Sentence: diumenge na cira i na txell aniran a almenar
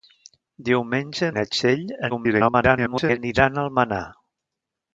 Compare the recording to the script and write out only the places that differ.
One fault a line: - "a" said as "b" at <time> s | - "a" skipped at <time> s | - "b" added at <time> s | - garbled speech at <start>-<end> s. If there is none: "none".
- "na cira" skipped at 1.3 s
- garbled speech at 2.1-3.2 s